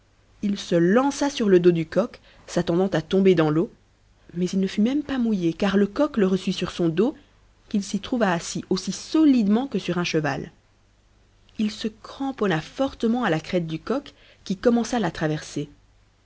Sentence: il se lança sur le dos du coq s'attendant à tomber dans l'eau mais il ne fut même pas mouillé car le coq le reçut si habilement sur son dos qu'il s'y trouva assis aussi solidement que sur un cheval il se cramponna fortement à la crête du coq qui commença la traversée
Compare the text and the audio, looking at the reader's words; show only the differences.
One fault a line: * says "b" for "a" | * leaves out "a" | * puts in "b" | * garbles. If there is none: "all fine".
* leaves out "si habilement"